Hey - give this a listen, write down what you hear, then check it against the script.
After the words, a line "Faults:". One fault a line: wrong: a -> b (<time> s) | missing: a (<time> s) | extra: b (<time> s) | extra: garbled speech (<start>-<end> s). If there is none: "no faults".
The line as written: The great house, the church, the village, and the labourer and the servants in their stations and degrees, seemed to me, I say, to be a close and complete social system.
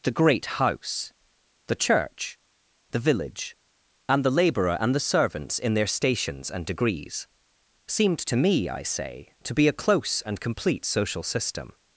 The great house, the church, the village, and the labourer and the servants in their stations and degrees, seemed to me, I say, to be a close and complete social system.
Faults:
no faults